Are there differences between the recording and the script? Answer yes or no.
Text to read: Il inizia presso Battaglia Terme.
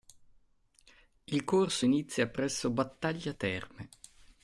yes